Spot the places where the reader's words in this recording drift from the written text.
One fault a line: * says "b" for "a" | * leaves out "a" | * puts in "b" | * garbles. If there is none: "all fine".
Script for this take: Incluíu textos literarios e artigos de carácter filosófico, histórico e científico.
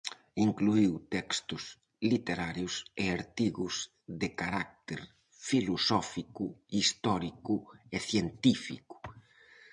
all fine